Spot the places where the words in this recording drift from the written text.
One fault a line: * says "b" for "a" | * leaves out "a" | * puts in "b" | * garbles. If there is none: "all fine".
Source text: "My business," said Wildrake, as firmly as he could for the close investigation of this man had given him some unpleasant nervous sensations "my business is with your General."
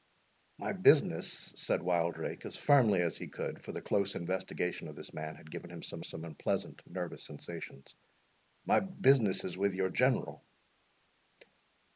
* puts in "some"